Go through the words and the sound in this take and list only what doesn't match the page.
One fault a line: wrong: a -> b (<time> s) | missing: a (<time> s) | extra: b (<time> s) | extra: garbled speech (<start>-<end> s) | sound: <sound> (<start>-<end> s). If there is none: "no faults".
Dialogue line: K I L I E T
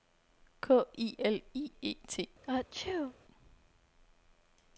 sound: sneeze (2.4-3.2 s)